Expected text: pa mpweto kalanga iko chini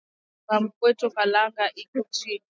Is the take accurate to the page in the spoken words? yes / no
yes